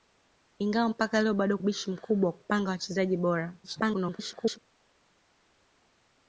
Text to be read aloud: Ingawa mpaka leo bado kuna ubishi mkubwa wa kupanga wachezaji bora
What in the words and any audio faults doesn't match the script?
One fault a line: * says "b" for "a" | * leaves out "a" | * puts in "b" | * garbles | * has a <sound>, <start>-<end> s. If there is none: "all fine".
* leaves out "kuna"
* garbles